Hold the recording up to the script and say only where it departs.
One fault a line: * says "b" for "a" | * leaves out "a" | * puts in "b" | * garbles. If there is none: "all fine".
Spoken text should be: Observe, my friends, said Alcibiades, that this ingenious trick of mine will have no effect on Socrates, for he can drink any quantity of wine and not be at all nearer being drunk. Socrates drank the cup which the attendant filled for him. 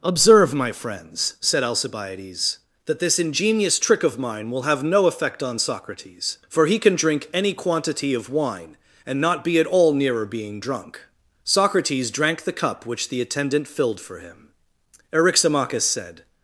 * puts in "Eryximachus said"